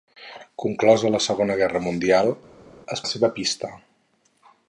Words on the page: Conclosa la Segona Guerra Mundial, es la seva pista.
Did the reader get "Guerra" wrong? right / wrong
right